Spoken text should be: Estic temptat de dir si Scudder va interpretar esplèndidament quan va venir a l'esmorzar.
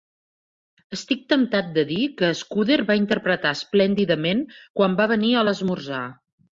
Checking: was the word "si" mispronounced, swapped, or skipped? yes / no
yes